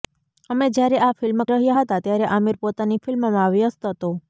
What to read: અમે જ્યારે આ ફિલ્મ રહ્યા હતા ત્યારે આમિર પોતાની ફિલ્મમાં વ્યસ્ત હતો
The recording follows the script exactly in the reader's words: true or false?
true